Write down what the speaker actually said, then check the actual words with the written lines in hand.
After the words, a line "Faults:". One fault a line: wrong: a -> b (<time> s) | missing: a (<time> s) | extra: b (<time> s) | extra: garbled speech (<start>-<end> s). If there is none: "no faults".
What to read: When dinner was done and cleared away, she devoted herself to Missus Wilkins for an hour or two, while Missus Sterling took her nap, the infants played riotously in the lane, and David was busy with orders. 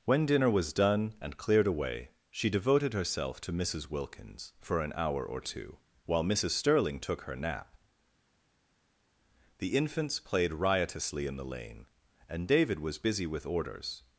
When dinner was done and cleared away, she devoted herself to Missus Wilkins for an hour or two, while Missus Sterling took her nap, the infants played riotously in the lane, and David was busy with orders.
Faults:
no faults